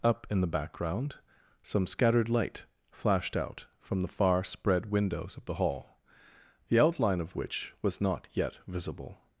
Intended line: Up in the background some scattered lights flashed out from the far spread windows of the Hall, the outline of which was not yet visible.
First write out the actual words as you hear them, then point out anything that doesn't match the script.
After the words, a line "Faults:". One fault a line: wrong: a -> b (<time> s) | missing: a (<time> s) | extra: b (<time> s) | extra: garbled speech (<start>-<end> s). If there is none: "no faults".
Up in the background some scattered light flashed out from the far spread windows of the Hall, the outline of which was not yet visible.
Faults:
wrong: lights -> light (2.3 s)